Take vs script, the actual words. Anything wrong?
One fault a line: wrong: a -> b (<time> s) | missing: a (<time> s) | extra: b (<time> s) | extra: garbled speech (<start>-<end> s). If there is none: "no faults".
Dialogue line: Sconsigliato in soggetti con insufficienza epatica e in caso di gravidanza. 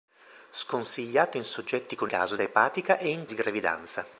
wrong: insufficienza -> caso (2.1 s)
missing: caso (3.3 s)